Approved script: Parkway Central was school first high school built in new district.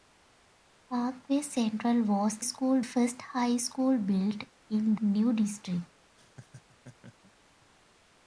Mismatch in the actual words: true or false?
false